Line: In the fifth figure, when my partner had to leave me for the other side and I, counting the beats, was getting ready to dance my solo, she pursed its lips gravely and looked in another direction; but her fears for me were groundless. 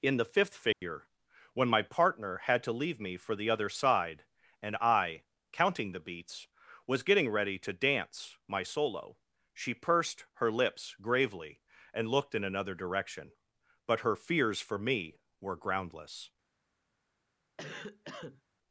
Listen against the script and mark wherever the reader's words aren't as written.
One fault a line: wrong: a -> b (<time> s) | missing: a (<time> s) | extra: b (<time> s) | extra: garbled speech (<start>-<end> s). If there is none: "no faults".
wrong: its -> her (10.3 s)